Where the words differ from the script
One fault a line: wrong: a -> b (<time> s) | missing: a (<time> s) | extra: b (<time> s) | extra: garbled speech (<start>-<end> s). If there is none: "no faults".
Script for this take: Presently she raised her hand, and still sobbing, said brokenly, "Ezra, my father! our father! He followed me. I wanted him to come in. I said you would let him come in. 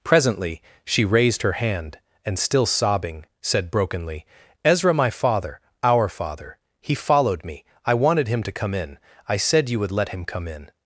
no faults